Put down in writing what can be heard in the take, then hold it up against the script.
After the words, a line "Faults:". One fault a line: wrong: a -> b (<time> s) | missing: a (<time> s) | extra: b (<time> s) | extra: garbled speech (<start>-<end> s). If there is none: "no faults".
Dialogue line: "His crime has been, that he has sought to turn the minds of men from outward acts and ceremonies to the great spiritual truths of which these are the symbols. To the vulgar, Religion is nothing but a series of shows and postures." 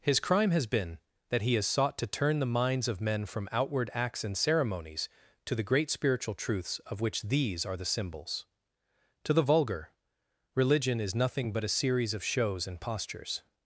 "His crime has been, that he has sought to turn the minds of men from outward acts and ceremonies to the great spiritual truths of which these are the symbols. To the vulgar, Religion is nothing but a series of shows and postures."
Faults:
no faults